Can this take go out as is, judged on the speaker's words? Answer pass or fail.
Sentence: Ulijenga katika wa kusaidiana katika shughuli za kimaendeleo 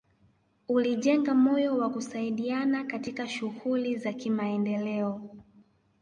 fail